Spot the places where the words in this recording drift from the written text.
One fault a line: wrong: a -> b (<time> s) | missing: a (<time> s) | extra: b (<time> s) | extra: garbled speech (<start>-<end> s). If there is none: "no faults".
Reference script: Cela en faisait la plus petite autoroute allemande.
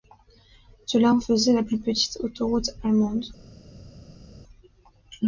no faults